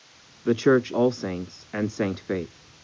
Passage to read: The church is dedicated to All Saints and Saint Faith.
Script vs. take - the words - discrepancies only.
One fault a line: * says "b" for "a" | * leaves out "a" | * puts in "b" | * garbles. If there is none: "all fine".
* leaves out "is dedicated to"